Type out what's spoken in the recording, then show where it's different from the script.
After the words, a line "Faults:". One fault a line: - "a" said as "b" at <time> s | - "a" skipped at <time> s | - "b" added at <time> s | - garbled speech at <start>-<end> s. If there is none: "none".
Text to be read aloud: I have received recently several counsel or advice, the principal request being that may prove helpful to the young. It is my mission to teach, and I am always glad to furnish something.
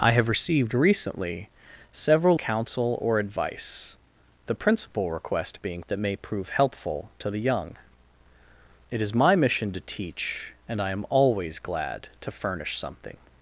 I have received recently several counsel or advice, the principal request being that may prove helpful to the young. It is my mission to teach, and I am always glad to furnish something.
Faults:
none